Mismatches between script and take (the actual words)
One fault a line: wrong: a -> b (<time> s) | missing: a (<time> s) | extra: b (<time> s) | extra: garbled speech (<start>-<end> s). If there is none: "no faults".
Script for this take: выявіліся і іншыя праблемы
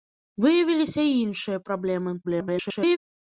extra: garbled speech (2.2-3.0 s)